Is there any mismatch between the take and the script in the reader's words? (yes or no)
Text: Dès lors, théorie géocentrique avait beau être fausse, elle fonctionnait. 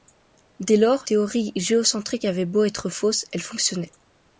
no